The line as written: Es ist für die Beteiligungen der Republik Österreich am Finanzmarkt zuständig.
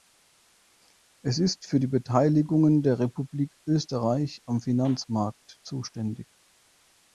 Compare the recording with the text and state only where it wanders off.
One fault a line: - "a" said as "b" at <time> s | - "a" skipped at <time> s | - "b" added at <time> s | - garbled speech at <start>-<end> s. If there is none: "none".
none